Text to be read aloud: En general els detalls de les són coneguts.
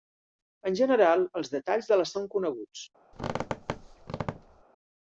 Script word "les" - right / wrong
right